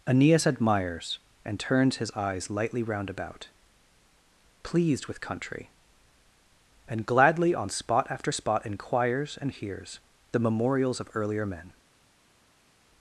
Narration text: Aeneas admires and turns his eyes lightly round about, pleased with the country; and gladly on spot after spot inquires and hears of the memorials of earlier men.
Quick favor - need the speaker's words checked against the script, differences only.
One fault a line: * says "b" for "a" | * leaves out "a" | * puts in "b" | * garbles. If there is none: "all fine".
* leaves out "the"
* leaves out "of"